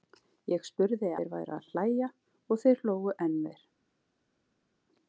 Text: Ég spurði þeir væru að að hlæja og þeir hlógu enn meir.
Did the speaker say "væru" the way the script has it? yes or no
yes